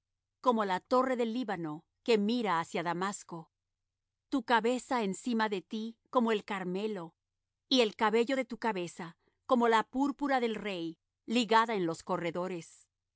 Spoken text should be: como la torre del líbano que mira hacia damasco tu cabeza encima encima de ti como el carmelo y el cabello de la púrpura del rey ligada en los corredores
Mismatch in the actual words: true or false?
true